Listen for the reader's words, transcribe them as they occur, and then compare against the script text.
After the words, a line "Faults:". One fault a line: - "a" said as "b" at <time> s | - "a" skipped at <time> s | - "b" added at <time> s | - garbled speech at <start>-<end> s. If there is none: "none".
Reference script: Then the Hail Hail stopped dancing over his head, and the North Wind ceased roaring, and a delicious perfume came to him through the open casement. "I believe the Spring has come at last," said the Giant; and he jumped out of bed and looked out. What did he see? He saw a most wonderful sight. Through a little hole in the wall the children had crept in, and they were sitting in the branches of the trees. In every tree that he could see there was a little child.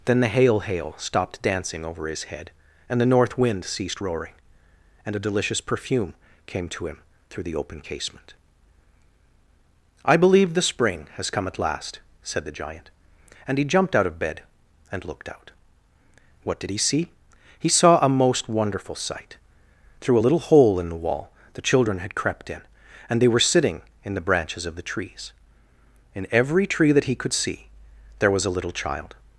Then the Hail Hail stopped dancing over his head, and the North Wind ceased roaring, and a delicious perfume came to him through the open casement. "I believe the Spring has come at last," said the Giant; and he jumped out of bed and looked out. What did he see? He saw a most wonderful sight. Through a little hole in the wall the children had crept in, and they were sitting in the branches of the trees. In every tree that he could see there was a little child.
Faults:
none